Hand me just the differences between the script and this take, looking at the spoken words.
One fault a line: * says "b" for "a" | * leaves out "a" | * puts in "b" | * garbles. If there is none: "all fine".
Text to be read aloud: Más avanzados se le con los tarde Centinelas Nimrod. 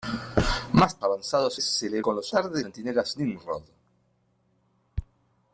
all fine